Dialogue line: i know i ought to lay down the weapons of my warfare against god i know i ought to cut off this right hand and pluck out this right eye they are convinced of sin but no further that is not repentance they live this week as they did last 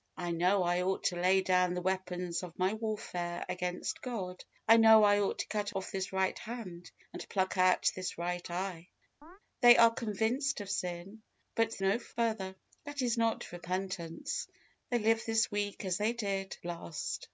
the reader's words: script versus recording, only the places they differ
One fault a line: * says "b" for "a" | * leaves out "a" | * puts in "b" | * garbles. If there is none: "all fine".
all fine